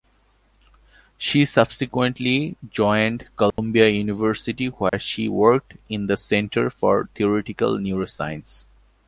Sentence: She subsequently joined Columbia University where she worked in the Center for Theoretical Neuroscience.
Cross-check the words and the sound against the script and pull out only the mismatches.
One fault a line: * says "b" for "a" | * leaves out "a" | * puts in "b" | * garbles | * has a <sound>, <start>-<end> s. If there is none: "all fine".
* has a dropout, 3.5-3.6 s
* has a dropout, 4.9-4.9 s